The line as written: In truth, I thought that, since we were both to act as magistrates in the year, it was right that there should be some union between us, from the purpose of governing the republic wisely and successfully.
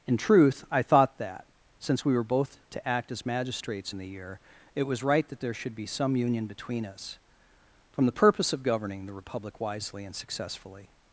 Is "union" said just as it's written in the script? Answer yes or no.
yes